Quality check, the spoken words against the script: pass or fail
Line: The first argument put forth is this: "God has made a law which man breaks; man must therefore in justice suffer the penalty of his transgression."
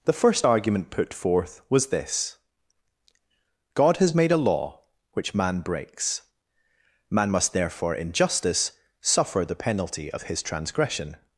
fail